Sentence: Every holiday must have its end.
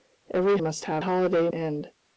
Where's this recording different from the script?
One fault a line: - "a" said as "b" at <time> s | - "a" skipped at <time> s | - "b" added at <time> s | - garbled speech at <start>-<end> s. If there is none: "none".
- "holiday" skipped at 0.6 s
- "its" said as "holiday" at 1.0 s